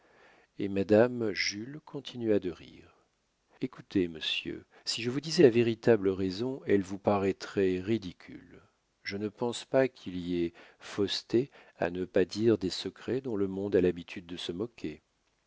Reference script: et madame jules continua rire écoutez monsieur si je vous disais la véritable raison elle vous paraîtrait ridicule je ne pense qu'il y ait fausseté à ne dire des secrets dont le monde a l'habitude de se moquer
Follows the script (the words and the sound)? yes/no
no